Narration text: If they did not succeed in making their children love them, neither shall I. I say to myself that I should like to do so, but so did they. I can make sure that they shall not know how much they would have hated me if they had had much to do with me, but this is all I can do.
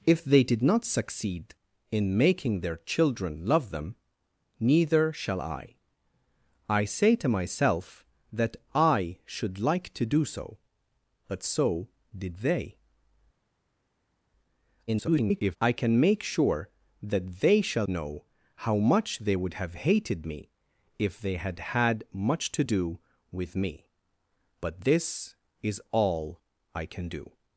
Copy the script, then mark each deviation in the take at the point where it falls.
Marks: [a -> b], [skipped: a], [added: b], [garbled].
If they did not succeed in making their children love them, neither shall I. I say to myself that I should like to do so, but so did they. [garbled] I can make sure that they shall [skipped: not] know how much they would have hated me if they had had much to do with me, but this is all I can do.